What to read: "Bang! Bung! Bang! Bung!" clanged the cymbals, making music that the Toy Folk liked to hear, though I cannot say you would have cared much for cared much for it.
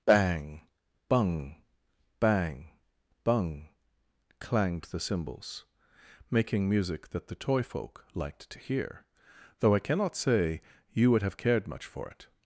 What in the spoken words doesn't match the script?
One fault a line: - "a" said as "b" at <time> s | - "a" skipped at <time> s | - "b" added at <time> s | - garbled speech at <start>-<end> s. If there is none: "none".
- "cared much for" skipped at 12.1 s